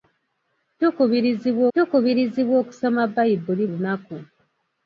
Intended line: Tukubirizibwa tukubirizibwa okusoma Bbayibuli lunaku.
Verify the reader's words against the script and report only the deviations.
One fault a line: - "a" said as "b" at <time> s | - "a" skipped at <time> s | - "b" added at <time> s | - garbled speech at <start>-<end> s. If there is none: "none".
none